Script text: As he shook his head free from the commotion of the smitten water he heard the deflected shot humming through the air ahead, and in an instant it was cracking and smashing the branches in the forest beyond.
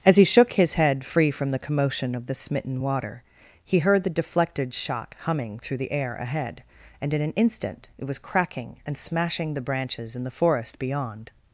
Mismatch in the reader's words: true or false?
false